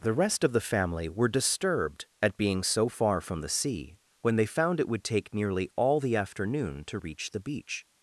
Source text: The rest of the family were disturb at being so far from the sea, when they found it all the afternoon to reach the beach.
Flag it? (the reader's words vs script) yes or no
yes